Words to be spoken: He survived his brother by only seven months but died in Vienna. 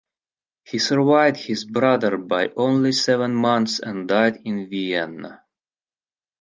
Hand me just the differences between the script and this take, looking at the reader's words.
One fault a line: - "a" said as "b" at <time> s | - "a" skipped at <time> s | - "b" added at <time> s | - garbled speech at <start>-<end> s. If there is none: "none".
- "but" said as "and" at 3.8 s